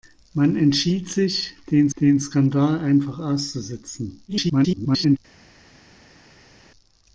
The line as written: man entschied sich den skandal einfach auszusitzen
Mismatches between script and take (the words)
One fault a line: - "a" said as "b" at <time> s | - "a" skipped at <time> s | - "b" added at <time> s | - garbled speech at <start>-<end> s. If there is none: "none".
- "den" added at 2.0 s
- garbled speech at 4.3-5.2 s